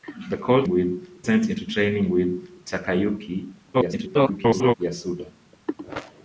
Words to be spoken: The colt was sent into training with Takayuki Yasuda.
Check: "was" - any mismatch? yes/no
yes